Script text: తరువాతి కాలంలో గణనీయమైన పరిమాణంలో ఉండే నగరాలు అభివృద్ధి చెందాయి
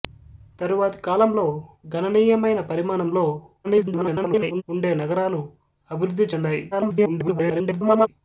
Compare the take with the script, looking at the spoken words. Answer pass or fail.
fail